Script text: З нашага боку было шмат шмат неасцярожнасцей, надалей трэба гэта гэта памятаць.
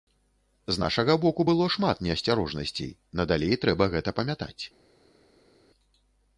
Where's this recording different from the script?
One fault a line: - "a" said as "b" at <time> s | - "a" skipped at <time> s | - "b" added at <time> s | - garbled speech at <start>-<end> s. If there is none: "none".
- "шмат" skipped at 2.0 s
- "гэта" skipped at 4.1 s